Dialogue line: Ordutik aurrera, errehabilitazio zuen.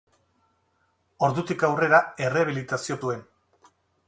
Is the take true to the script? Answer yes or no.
yes